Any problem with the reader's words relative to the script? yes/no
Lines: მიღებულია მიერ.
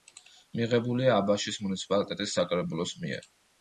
yes